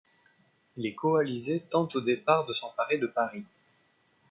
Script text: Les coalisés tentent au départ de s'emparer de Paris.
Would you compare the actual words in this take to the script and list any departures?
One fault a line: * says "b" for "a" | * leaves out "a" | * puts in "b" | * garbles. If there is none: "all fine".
all fine